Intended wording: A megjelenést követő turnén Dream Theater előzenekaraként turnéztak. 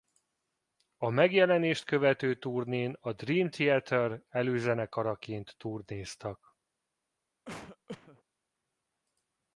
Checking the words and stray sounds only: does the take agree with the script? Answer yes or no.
no